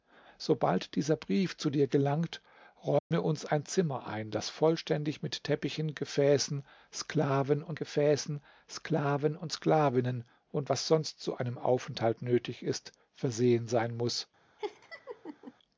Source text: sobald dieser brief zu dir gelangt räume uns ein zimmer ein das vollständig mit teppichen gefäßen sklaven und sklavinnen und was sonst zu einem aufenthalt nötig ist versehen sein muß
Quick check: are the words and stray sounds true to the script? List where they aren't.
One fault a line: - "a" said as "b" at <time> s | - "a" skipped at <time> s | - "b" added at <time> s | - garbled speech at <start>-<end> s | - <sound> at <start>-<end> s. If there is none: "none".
- dropout at 3.0-3.1 s
- "gefäßen sklaven und" added at 7.7 s
- laugh at 14.6-15.5 s